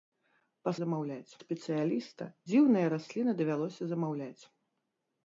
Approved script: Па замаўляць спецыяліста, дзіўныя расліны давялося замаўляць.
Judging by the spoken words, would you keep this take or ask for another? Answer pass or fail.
pass